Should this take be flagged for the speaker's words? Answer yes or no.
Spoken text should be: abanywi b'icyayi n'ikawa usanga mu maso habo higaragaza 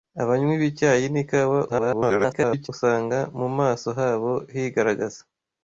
yes